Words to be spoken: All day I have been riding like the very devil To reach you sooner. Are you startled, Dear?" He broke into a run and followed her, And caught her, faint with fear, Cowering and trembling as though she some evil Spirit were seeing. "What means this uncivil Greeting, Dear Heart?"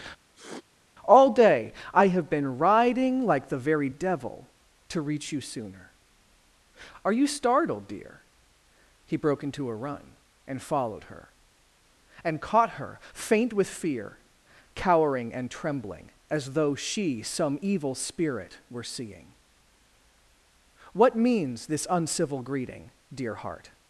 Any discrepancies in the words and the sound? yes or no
yes